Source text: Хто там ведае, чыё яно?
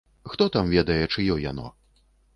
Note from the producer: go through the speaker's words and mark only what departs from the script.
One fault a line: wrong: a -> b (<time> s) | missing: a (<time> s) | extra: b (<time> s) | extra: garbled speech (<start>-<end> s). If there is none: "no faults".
no faults